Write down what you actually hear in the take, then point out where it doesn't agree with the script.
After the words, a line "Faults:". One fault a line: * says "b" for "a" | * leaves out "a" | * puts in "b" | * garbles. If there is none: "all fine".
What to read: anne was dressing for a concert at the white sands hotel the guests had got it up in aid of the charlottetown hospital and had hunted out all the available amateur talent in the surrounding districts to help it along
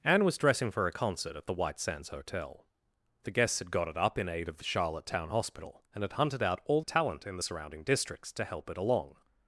anne was dressing for a concert at the white sands hotel the guests had got it up in aid of the charlottetown hospital and had hunted out all talent in the surrounding districts to help it along
Faults:
* leaves out "the available amateur"